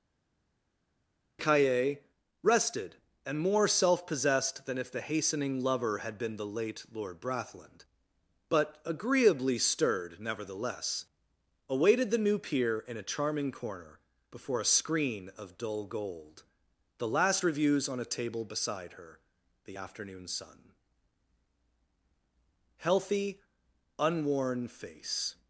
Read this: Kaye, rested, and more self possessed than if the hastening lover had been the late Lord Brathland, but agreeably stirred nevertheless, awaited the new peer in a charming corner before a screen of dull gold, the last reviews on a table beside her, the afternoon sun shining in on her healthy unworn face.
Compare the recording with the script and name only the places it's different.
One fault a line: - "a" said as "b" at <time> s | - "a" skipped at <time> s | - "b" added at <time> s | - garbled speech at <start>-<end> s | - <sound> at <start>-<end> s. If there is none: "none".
- "shining in on her" skipped at 20.7 s